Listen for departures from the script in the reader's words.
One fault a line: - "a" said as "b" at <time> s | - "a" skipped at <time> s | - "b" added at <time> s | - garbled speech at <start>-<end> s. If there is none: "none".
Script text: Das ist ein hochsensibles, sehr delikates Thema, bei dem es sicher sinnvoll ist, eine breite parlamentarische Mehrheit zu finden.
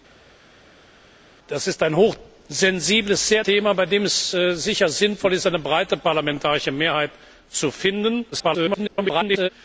- "delikates" skipped at 3.4 s
- garbled speech at 8.3-9.5 s